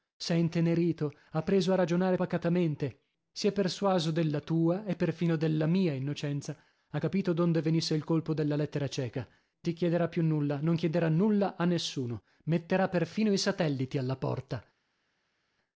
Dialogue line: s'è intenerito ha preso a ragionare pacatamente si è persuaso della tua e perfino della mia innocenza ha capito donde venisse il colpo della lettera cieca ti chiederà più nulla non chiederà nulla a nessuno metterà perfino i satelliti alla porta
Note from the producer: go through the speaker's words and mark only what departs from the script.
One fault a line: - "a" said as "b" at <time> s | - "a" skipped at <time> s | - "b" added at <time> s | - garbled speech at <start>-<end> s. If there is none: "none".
none